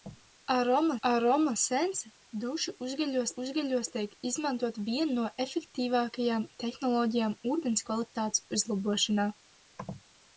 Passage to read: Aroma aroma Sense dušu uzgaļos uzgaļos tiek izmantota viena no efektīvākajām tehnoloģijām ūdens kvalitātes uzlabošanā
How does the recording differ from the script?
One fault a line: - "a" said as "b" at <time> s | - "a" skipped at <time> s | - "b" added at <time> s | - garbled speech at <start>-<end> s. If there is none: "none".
none